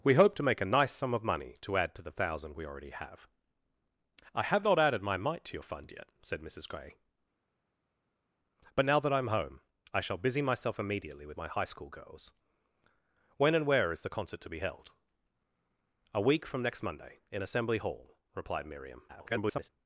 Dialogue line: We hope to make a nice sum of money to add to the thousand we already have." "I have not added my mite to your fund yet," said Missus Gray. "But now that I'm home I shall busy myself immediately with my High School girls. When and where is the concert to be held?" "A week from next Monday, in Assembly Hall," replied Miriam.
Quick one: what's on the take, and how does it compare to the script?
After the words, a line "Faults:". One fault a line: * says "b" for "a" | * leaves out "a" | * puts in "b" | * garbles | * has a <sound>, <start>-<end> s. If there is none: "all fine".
We hope to make a nice sum of money to add to the thousand we already have." "I have not added my mite to your fund yet," said Missus Gray. "But now that I'm home I shall busy myself immediately with my High School girls. When and where is the concert to be held?" "A week from next Monday, in Assembly Hall," replied Miriam. [garbled]
Faults:
* garbles